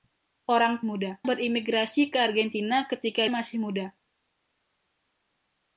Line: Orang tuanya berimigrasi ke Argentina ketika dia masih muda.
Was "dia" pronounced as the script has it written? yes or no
no